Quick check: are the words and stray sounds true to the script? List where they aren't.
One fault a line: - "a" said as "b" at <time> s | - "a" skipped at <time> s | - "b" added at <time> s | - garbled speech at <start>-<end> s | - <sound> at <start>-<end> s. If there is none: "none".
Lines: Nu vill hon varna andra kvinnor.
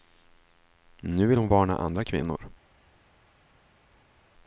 none